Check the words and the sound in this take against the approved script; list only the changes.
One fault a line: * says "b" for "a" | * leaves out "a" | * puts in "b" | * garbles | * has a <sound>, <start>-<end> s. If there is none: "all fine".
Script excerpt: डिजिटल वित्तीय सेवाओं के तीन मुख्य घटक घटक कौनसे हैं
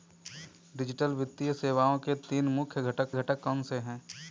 all fine